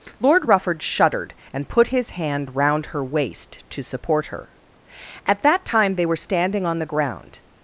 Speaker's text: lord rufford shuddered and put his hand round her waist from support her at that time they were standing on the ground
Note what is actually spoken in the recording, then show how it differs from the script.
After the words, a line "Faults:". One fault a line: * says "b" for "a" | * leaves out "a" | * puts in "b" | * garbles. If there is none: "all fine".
lord rufford shuddered and put his hand round her waist to support her at that time they were standing on the ground
Faults:
* says "to" for "from"